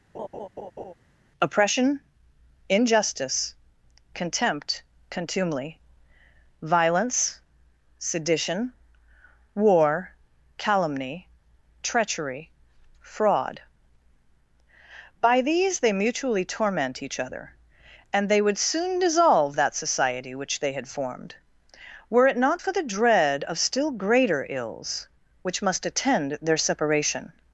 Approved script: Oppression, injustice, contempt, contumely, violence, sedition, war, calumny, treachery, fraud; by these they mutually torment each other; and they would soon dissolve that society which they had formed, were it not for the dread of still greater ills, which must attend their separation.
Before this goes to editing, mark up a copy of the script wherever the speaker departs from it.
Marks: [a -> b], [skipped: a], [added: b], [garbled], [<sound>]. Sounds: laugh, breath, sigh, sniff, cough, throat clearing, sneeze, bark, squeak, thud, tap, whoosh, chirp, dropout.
[laugh] Oppression, injustice, contempt, contumely, violence, sedition, war, calumny, treachery, fraud; by these they mutually torment each other; and they would soon dissolve that society which they had formed, were it not for the dread of still greater ills, which must attend their separation.